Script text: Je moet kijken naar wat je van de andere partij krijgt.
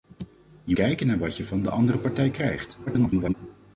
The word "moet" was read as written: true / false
false